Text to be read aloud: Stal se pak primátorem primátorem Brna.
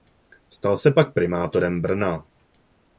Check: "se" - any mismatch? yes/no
no